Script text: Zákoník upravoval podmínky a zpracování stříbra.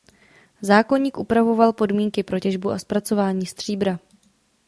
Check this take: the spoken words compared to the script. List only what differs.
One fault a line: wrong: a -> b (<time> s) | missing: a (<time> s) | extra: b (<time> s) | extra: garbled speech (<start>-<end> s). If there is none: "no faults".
extra: pro těžbu (2.2 s)